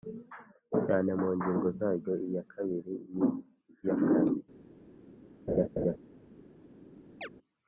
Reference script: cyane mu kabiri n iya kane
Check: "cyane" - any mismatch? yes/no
no